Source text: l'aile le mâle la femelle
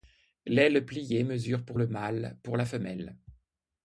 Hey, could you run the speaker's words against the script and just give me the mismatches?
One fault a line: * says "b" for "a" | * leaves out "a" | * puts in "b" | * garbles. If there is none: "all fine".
* puts in "pliée mesure pour"
* puts in "pour"